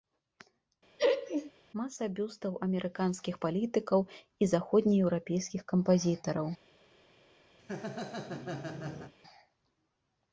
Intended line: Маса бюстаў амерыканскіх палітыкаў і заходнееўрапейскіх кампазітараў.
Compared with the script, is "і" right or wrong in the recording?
right